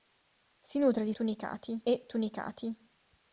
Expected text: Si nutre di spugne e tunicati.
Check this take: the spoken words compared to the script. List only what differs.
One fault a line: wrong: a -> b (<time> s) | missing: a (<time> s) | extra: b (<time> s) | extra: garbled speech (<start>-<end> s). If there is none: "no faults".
wrong: spugne -> tunicati (1.1 s)